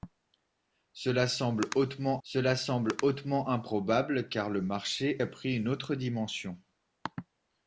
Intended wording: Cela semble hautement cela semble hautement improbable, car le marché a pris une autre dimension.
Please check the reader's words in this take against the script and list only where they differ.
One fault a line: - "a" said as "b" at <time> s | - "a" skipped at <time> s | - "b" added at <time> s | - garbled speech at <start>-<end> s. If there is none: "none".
none